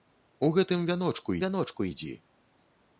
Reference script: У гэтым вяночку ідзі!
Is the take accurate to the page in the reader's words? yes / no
no